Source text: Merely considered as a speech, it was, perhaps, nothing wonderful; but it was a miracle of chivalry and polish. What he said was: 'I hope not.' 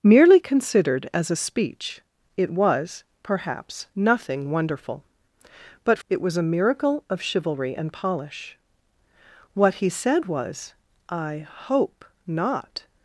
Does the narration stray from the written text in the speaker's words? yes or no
no